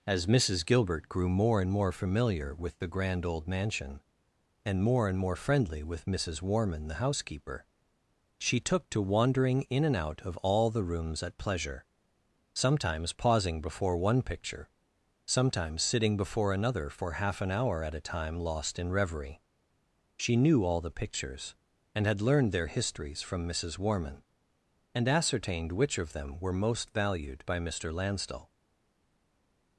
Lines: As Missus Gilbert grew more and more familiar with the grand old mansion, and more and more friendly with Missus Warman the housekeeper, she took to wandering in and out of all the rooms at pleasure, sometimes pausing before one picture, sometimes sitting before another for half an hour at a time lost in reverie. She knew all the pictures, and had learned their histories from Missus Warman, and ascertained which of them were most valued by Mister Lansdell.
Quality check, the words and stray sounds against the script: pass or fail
pass